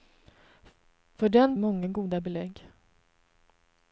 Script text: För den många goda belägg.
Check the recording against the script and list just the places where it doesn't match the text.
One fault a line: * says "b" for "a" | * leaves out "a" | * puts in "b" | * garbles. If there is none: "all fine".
all fine